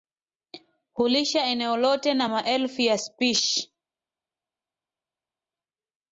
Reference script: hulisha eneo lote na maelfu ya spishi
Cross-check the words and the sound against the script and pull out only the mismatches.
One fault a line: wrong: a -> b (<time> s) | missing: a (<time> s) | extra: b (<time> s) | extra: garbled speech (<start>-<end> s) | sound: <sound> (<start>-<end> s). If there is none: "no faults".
no faults